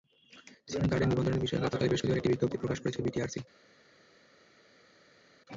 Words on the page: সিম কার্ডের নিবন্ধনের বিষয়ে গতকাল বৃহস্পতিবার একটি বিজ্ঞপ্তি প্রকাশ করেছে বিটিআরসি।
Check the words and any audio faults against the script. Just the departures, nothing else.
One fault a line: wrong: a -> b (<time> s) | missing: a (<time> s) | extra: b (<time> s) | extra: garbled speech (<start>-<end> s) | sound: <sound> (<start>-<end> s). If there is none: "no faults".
no faults